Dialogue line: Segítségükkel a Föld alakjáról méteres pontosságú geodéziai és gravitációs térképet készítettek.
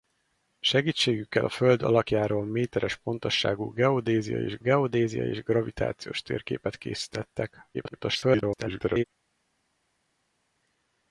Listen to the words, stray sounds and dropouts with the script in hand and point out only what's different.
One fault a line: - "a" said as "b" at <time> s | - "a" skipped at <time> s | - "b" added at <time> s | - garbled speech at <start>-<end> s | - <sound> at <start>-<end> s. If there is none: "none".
- "geodéziai és" added at 4.6 s
- garbled speech at 7.7-9.0 s